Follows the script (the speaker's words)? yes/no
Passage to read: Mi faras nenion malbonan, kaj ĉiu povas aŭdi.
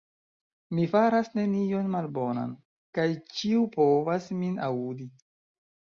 no